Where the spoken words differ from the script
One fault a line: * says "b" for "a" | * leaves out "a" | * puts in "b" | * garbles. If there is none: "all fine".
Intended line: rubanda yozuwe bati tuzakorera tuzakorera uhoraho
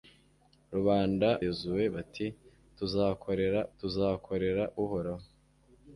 all fine